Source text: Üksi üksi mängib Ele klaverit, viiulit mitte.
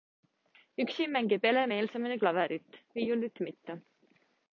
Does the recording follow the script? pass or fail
fail